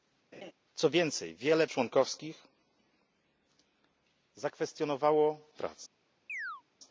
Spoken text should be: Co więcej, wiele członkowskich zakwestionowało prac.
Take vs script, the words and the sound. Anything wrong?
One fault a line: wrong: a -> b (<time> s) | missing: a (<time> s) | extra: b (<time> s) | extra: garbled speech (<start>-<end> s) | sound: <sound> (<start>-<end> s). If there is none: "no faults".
sound: laugh (0.3-0.5 s)
sound: chirp (6.3-6.6 s)